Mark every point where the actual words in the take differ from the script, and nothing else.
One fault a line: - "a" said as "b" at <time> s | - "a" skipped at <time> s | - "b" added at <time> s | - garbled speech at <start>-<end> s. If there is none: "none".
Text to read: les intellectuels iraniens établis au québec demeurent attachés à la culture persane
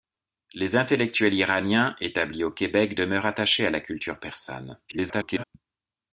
- garbled speech at 4.9-5.4 s